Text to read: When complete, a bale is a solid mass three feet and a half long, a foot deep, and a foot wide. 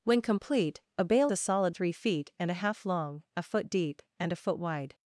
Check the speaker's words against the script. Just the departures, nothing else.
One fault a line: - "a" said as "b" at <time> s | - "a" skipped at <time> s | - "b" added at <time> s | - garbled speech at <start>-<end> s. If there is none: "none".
- "is" skipped at 1.3 s
- "mass" skipped at 1.7 s